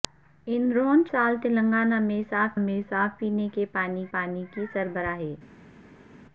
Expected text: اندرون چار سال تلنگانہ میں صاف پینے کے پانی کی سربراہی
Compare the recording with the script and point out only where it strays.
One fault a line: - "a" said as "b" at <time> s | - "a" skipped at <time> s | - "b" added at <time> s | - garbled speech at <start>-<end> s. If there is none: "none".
- "چار" skipped at 1.0 s
- "میں صاف" added at 2.6 s
- "پانی" added at 4.1 s